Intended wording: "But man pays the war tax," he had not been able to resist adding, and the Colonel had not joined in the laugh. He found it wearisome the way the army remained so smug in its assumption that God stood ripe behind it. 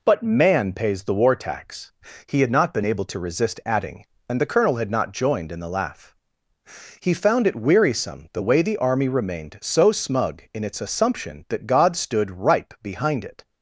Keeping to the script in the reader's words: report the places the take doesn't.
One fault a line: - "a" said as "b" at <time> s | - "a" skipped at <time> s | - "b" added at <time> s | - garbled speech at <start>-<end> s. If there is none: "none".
none